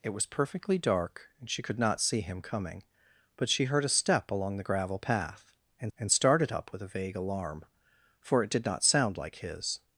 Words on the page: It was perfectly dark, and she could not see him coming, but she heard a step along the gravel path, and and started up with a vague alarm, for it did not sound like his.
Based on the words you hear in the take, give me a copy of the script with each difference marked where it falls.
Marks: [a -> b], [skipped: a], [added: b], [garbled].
It was perfectly dark, and she could not see him coming, but she heard a step along the gravel path, and and started up with a vague alarm, for it did not sound like his.